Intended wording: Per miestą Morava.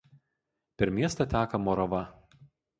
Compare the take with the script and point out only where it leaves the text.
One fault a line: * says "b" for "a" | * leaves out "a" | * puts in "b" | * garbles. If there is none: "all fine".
* puts in "teka"